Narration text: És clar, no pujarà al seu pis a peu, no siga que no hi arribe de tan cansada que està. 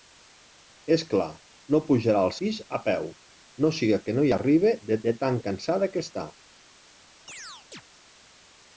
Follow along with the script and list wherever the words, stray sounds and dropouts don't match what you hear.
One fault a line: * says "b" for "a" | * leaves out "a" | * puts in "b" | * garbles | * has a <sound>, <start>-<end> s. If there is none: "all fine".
* leaves out "seu"
* puts in "de"
* has a chirp, 7.3-7.8 s